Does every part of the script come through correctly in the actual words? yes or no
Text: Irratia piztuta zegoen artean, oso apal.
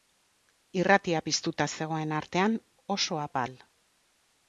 yes